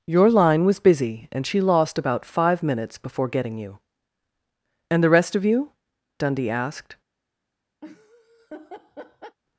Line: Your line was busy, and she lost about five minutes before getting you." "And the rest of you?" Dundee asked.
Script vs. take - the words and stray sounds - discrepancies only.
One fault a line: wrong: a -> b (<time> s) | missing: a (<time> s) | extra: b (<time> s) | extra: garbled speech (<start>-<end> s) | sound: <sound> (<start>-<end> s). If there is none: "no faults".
sound: laugh (7.8-9.4 s)